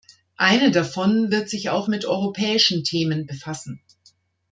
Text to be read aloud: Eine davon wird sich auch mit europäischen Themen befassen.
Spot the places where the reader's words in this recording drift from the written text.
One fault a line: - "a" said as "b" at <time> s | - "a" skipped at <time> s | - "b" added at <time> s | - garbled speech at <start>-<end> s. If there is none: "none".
none